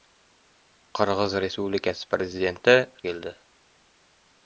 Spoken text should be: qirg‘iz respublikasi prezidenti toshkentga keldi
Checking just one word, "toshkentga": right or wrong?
wrong